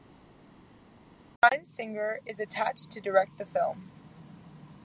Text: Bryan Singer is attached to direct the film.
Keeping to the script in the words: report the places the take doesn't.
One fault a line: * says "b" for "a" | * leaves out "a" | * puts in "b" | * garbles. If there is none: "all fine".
all fine